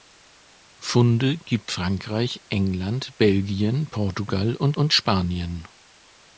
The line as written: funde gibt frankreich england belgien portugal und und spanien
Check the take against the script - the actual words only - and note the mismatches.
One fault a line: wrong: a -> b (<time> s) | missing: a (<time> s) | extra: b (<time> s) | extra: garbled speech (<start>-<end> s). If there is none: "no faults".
no faults